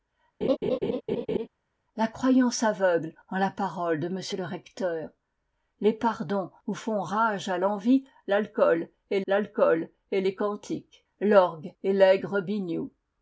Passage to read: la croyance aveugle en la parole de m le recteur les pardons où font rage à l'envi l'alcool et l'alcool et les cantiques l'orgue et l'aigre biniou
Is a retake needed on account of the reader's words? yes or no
no